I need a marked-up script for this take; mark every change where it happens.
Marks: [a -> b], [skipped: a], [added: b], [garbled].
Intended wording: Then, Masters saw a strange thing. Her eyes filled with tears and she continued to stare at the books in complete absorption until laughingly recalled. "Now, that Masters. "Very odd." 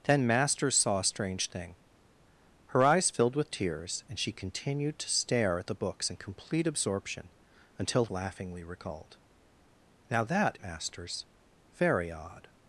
Then, Masters saw a strange thing. Her eyes filled with tears and she continued to stare at the books in complete absorption until laughingly recalled. "Now, that Masters. "Very odd."